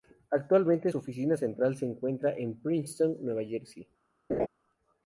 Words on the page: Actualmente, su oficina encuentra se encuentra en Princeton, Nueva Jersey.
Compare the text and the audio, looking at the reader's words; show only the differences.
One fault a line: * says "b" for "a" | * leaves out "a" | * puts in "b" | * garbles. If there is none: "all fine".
* says "central" for "encuentra"